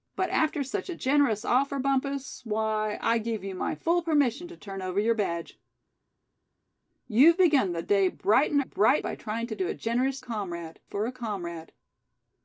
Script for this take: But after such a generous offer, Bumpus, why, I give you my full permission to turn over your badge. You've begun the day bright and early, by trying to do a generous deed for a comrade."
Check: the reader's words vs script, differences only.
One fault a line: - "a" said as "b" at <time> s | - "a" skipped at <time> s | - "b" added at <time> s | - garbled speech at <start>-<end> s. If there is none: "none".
- "early" said as "bright" at 8.6 s
- "deed" said as "comrade" at 10.2 s